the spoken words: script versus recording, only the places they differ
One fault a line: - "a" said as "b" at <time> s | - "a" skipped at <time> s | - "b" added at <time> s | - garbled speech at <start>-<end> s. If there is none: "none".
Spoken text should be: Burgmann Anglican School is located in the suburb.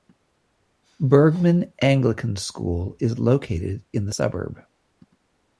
none